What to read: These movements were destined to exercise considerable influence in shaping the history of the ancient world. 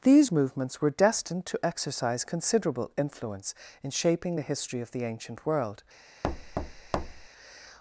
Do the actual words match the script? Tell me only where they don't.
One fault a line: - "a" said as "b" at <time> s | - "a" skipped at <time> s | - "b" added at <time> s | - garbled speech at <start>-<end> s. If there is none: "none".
none